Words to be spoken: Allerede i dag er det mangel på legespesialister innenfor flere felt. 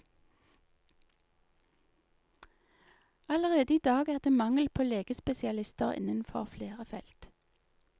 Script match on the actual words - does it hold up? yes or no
yes